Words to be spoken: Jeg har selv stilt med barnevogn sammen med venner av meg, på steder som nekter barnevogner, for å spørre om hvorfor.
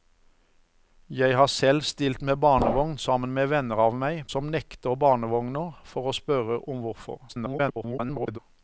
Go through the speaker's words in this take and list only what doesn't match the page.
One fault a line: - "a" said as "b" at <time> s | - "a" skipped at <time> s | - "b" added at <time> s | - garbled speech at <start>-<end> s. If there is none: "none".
- "på steder" skipped at 4.2 s
- garbled speech at 7.3-8.4 s